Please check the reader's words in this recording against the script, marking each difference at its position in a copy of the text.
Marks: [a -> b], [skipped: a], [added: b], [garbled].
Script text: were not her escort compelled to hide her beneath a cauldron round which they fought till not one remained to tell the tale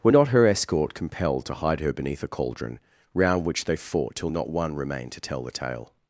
were not her escort compelled to hide her beneath a cauldron round which they fought till not one remained to tell the tale